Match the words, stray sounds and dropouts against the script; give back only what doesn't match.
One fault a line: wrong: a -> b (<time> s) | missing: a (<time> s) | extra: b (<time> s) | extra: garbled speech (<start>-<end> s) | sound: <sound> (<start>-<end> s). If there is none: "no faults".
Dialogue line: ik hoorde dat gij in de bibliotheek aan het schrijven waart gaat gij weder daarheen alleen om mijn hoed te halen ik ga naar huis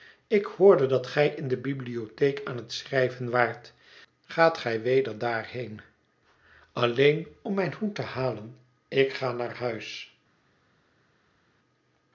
no faults